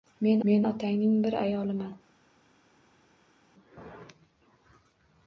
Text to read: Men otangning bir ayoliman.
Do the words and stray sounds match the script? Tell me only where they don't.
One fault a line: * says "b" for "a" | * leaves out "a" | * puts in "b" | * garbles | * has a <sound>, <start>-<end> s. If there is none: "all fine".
* puts in "men"